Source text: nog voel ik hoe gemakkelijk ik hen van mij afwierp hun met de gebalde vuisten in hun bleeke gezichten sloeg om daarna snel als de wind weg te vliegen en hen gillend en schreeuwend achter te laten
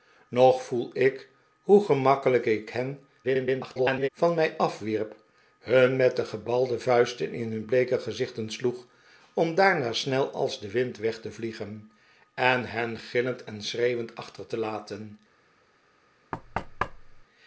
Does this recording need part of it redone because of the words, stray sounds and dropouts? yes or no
yes